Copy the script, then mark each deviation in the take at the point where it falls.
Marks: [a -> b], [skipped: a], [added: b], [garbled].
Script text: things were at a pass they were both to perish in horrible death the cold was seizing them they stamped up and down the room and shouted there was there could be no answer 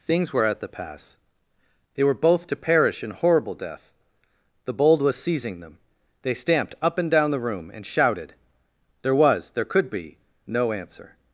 things were at [a -> the] pass they were both to perish in horrible death the [cold -> bold] was seizing them they stamped up and down the room and shouted there was there could be no answer